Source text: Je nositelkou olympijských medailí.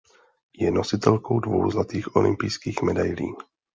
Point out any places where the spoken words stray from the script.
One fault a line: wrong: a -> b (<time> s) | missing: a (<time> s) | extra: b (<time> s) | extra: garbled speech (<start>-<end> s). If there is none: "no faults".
extra: dvou zlatých (1.4 s)